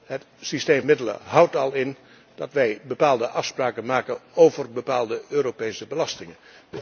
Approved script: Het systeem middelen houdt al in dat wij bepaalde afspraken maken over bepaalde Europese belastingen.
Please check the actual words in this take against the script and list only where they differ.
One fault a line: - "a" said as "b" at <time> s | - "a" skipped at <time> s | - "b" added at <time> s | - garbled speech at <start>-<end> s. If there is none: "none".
none